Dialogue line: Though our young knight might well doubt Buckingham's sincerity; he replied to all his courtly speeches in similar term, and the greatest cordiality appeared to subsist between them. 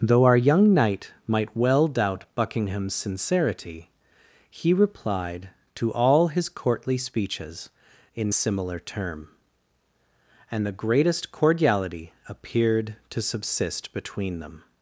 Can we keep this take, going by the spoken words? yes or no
yes